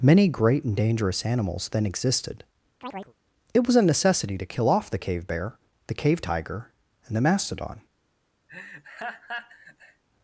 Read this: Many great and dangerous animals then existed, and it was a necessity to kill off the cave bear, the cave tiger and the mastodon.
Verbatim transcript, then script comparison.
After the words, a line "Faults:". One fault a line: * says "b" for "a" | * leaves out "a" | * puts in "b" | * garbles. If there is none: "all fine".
Many great and dangerous animals then existed, it was a necessity to kill off the cave bear, the cave tiger and the mastodon.
Faults:
* leaves out "and"